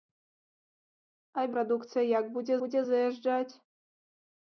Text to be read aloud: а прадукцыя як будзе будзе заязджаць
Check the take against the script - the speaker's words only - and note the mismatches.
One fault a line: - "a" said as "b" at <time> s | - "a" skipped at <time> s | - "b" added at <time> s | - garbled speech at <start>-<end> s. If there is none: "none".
none